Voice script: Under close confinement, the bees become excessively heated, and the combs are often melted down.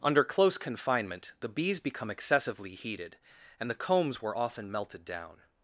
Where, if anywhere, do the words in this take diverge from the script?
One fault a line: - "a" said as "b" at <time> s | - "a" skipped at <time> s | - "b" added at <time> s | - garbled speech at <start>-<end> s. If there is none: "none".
- "are" said as "were" at 4.2 s